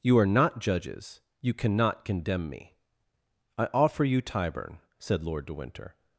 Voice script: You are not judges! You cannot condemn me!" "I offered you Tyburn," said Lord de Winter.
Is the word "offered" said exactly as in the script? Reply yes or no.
no